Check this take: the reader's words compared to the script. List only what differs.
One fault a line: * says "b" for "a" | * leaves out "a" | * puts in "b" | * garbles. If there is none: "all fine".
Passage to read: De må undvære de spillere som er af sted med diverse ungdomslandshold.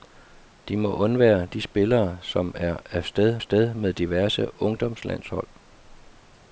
* puts in "sted"